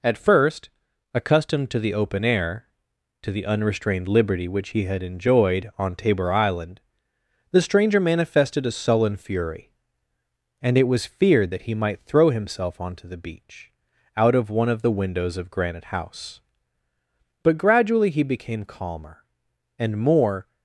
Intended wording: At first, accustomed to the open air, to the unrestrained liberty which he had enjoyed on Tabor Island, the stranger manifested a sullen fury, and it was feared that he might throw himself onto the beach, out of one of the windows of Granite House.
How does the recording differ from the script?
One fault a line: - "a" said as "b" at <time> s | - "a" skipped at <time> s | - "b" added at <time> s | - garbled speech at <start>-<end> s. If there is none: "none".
- "But gradually he became calmer and more" added at 17.4 s